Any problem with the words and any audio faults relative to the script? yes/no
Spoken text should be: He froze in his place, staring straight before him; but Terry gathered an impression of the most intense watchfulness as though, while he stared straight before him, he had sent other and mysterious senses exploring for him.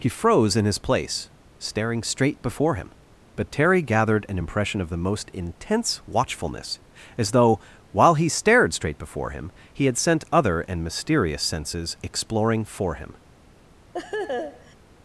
yes